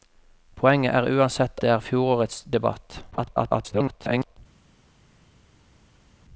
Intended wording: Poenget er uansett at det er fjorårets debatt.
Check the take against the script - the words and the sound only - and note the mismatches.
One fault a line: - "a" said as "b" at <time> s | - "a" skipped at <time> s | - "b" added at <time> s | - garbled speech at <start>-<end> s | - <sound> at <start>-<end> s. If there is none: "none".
- "at" skipped at 1.6 s
- garbled speech at 3.1-4.4 s